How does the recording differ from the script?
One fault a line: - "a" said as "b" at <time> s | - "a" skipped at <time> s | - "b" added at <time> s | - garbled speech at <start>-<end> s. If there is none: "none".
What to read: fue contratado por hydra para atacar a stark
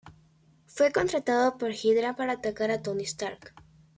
- "tony" added at 2.8 s